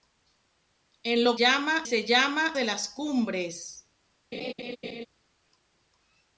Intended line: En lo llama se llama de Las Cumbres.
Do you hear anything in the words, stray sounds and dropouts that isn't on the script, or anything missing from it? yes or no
yes